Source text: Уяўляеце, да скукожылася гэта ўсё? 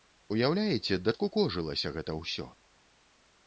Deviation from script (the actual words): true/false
false